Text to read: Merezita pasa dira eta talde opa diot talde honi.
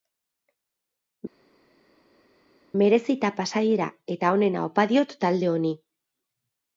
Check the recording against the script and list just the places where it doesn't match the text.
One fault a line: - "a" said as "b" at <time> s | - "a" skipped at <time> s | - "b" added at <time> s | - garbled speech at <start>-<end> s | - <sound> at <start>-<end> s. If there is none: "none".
- "talde" said as "onena" at 4.4 s